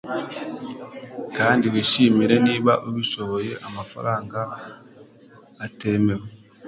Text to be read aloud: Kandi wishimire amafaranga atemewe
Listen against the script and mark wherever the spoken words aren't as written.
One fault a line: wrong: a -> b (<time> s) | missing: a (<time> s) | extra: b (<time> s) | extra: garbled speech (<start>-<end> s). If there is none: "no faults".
extra: niba ubishoboye (2.5 s)